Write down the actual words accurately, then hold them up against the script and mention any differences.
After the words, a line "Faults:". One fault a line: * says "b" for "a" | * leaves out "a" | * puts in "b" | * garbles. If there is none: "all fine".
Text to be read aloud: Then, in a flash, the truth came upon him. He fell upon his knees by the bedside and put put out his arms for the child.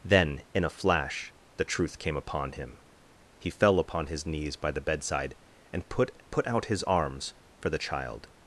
Then, in a flash, the truth came upon him. He fell upon his knees by the bedside and put put out his arms for the child.
Faults:
all fine